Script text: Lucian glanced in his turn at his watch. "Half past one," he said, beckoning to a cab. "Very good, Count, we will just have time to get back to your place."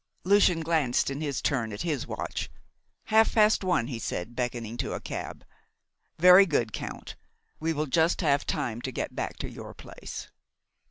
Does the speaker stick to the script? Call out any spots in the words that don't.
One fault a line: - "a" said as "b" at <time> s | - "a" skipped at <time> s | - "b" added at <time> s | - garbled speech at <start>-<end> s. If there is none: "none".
none